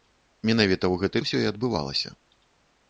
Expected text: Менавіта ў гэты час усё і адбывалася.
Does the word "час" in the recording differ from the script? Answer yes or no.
yes